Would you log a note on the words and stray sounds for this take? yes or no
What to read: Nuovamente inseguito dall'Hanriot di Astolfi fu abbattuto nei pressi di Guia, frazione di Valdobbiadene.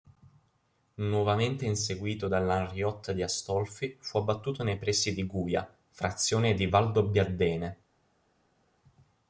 no